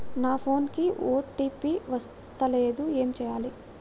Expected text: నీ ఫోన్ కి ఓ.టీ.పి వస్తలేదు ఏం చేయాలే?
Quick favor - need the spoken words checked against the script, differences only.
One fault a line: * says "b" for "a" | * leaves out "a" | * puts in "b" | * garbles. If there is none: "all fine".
* says "నా" for "నీ"